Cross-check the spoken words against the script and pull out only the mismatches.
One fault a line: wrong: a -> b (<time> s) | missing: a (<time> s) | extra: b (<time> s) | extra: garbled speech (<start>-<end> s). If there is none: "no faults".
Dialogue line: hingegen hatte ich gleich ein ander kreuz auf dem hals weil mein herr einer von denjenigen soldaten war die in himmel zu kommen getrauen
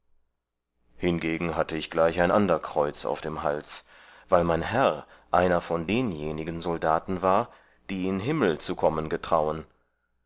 no faults